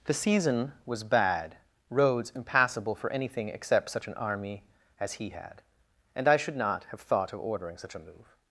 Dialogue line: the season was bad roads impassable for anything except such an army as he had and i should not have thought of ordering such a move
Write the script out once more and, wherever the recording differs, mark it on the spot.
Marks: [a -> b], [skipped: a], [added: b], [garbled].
the season was bad roads impassable for anything except such an army as he had and i should not have thought of ordering such a move